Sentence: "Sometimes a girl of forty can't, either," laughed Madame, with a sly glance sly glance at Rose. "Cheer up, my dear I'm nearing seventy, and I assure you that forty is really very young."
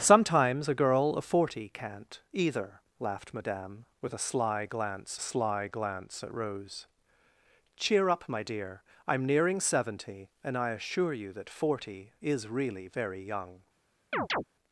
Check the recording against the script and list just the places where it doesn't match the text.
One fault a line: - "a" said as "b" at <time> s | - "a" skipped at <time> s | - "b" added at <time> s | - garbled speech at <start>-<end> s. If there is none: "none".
none